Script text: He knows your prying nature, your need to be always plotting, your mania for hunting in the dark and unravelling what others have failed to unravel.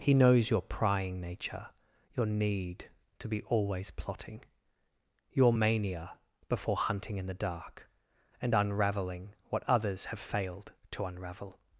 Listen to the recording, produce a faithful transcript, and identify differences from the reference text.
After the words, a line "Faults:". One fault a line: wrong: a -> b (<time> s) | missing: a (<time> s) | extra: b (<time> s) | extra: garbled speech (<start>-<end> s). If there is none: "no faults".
He knows your prying nature, your need to be always plotting, your mania before hunting in the dark and unravelling what others have failed to unravel.
Faults:
wrong: for -> before (6.5 s)